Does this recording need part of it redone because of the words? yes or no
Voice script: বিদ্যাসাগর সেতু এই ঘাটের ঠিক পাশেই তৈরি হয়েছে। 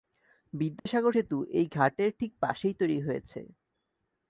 no